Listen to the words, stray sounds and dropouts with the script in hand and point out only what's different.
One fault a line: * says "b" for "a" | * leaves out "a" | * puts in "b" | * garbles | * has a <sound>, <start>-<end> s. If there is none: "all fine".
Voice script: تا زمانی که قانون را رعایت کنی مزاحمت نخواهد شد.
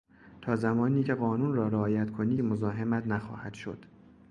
all fine